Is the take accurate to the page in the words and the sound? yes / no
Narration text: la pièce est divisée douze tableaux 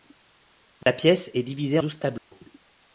no